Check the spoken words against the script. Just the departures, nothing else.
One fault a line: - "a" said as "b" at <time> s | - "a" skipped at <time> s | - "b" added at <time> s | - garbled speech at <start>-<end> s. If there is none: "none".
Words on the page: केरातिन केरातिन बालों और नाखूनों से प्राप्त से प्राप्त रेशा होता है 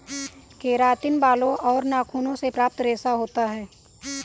- "केरातिन" skipped at 1.2 s
- "से प्राप्त" skipped at 2.8 s